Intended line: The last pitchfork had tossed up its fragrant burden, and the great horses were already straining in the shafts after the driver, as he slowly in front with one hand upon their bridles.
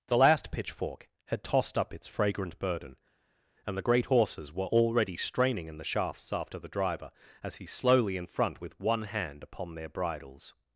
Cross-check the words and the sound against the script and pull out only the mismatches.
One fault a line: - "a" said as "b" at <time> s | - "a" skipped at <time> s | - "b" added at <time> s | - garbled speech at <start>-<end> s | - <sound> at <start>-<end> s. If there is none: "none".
none